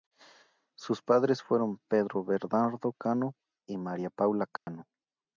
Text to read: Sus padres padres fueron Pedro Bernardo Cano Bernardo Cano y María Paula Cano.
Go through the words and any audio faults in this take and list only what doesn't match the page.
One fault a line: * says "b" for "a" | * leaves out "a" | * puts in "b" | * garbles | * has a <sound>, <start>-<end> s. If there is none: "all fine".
* leaves out "padres"
* leaves out "Bernardo Cano"
* has a dropout, 4.6-4.7 s